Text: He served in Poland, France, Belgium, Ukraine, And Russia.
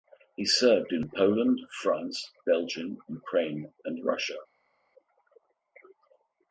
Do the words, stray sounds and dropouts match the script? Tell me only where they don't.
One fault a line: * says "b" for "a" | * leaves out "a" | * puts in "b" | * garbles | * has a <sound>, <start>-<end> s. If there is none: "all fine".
all fine